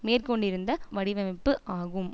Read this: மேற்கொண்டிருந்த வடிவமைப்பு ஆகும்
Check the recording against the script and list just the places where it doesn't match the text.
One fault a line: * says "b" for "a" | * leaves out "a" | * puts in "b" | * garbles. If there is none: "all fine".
all fine